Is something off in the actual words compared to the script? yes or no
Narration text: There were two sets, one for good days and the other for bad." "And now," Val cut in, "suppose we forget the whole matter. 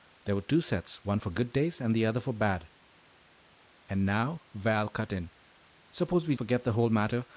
no